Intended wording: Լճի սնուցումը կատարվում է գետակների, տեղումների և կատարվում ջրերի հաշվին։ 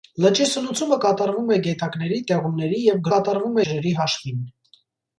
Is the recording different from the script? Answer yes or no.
no